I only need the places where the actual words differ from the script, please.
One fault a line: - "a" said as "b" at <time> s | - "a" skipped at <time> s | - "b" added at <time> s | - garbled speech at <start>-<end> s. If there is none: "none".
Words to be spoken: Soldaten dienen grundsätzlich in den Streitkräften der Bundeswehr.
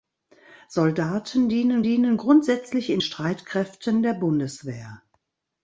- "dienen" added at 1.8 s
- "den" skipped at 3.0 s